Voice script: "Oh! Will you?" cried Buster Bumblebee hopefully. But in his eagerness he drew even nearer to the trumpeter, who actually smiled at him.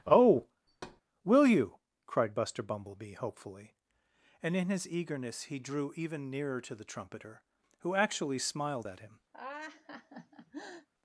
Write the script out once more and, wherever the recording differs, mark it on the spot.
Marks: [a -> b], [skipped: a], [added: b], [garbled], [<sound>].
"Oh! [thud] Will you?" cried Buster Bumblebee hopefully. [But -> And] in his eagerness he drew even nearer to the trumpeter, who actually smiled at him. [laugh]